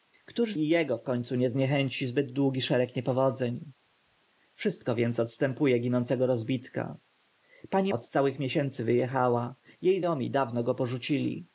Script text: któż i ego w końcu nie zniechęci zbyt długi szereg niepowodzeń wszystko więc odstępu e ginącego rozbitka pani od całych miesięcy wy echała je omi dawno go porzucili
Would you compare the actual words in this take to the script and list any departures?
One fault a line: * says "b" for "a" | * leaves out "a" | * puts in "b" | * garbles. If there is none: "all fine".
all fine